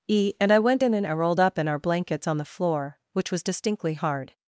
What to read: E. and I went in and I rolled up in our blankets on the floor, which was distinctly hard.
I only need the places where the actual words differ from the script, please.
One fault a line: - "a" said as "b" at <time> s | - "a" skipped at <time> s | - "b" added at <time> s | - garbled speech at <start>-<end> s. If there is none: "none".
none